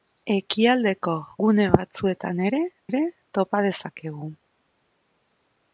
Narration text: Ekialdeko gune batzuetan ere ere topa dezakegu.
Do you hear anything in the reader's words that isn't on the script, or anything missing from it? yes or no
no